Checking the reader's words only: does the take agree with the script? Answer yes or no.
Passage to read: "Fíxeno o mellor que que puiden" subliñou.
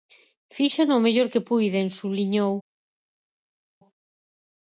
no